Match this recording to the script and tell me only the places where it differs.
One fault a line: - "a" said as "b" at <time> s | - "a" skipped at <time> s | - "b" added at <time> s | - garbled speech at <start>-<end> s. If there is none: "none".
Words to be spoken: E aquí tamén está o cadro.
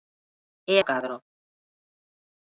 - "aquí tamén está" skipped at 0.8 s